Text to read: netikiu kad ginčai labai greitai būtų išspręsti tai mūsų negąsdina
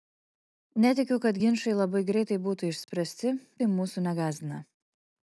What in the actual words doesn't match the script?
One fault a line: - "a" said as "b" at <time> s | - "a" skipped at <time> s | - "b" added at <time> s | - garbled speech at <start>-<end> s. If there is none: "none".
none